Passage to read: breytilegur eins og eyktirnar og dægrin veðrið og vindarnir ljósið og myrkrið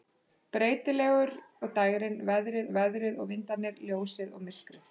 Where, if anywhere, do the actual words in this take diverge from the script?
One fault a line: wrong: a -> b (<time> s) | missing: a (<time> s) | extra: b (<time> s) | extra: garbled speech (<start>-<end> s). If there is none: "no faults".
missing: eins (1.3 s)
wrong: eyktirnar og dægrin -> dægrin veðrið (1.8 s)